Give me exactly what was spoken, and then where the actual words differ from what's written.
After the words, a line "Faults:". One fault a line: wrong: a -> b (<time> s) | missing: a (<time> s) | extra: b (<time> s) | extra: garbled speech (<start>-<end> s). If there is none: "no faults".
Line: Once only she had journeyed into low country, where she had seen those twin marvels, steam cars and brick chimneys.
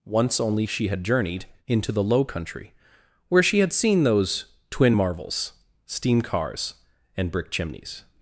Once only she had journeyed into the low country, where she had seen those twin marvels, steam cars and brick chimneys.
Faults:
extra: the (1.9 s)